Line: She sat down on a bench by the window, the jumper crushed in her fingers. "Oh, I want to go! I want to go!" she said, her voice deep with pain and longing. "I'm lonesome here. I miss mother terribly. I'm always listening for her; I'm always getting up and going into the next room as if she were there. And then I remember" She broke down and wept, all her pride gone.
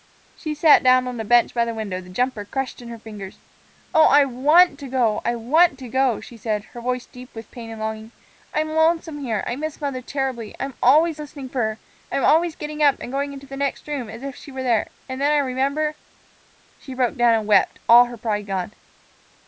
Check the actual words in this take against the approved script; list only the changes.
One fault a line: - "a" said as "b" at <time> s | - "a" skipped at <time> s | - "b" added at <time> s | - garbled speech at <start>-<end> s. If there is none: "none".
none